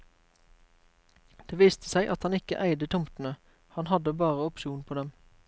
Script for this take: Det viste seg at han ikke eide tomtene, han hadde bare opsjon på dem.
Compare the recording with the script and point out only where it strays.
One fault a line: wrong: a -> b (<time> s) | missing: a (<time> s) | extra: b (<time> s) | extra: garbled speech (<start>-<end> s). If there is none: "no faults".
no faults